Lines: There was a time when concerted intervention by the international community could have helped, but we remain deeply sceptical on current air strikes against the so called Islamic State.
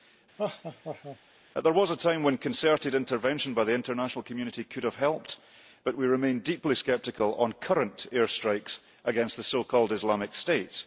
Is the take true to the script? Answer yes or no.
yes